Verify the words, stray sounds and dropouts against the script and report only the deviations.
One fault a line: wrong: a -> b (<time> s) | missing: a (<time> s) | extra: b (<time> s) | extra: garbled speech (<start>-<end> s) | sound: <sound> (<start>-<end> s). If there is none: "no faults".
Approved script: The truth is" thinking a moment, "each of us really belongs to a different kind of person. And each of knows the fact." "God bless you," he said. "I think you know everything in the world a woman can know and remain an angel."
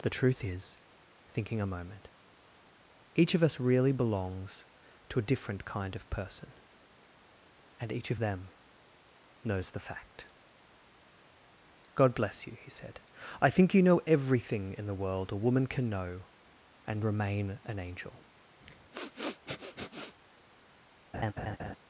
extra: them (8.2 s)
sound: sniff (18.6-20.1 s)
sound: laugh (21.1-21.8 s)